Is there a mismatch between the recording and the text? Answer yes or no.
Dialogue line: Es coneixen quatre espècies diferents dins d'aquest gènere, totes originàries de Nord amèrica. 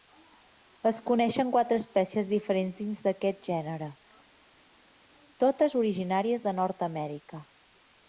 no